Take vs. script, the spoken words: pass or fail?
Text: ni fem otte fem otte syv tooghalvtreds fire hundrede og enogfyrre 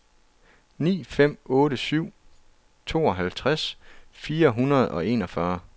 fail